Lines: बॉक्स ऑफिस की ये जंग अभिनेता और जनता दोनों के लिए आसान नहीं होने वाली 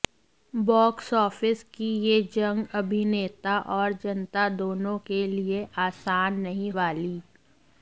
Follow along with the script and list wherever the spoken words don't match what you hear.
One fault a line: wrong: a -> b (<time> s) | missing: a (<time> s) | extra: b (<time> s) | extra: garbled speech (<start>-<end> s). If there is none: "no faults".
missing: होने (6.7 s)